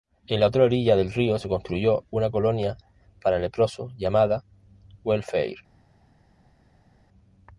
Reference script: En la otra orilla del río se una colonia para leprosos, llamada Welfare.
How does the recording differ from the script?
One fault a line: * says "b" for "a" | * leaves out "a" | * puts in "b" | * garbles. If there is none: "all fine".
* puts in "construyó"